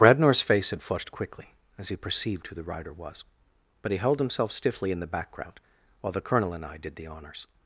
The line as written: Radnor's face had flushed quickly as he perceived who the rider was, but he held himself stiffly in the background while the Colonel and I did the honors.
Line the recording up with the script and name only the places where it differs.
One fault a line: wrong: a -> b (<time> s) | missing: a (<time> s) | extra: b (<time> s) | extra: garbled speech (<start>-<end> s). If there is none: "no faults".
no faults